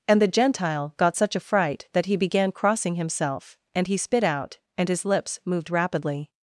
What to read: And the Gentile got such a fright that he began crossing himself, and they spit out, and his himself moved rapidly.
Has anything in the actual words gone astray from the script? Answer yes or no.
yes